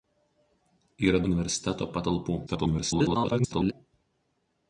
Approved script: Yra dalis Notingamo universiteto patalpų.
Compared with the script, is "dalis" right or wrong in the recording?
wrong